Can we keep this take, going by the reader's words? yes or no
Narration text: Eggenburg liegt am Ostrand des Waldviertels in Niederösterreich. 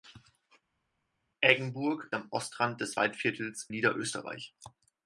no